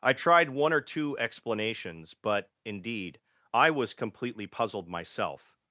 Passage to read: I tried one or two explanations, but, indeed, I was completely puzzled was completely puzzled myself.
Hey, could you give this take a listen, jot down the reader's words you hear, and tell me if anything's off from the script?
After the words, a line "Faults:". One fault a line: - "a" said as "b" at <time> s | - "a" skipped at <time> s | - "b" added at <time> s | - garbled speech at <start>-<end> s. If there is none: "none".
I tried one or two explanations, but, indeed, I was completely puzzled myself.
Faults:
- "was completely puzzled" skipped at 4.9 s